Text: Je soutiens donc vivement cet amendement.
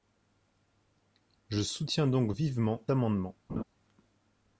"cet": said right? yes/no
no